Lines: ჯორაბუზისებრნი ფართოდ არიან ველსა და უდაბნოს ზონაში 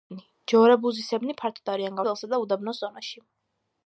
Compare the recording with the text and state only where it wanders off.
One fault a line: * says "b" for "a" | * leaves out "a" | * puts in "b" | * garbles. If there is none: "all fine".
all fine